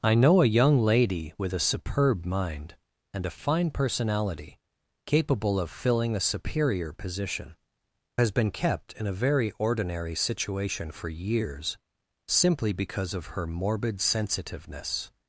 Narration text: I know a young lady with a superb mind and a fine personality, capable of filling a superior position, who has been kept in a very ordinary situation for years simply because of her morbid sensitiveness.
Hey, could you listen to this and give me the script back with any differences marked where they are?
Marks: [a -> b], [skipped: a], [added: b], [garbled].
I know a young lady with a superb mind and a fine personality, capable of filling a superior position, [skipped: who] has been kept in a very ordinary situation for years simply because of her morbid sensitiveness.